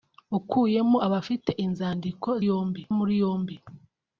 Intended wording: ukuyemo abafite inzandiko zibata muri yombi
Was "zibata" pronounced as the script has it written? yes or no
no